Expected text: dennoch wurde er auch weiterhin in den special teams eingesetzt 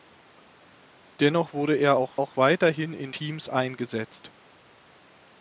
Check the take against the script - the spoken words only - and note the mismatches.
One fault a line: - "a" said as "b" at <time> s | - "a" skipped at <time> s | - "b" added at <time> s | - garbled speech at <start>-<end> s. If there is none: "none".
- "auch" added at 2.1 s
- "den special" skipped at 3.1 s